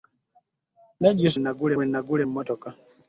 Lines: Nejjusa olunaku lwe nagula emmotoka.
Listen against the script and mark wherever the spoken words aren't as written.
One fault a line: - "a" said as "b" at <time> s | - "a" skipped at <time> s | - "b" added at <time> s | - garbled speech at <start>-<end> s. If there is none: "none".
- "olunaku" said as "nagula" at 1.4 s